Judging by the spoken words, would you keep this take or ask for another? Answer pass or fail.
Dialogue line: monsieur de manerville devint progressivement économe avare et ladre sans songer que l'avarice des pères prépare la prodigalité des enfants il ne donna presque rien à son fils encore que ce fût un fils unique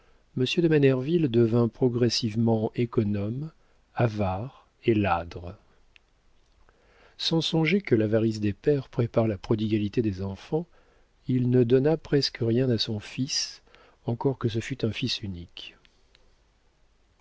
pass